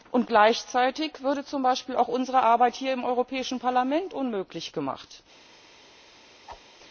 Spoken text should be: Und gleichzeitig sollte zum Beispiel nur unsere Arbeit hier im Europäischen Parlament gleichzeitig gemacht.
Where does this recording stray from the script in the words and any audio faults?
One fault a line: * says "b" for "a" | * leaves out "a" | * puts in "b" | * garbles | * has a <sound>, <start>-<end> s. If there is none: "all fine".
* says "würde" for "sollte"
* says "auch" for "nur"
* says "unmöglich" for "gleichzeitig"
* has a whoosh, 6.5-6.7 s